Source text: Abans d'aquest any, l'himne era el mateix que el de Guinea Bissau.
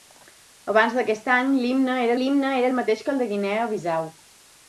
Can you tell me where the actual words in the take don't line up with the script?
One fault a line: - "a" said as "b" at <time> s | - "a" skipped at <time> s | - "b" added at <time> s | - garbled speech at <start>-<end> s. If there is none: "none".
- "l'himne era" added at 2.2 s